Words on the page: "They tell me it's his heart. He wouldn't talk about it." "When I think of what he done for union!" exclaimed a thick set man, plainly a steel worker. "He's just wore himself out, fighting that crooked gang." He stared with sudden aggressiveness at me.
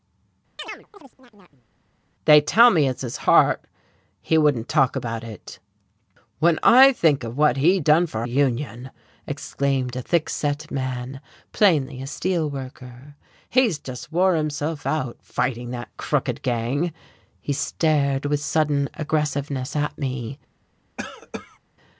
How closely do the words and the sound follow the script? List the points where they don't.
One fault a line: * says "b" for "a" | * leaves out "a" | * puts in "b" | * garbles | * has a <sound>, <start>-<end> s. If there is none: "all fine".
* has a chirp, 0.6-1.7 s
* has a cough, 21.0-21.6 s